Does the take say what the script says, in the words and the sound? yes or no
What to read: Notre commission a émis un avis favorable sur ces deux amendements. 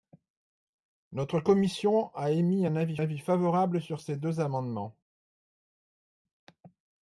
no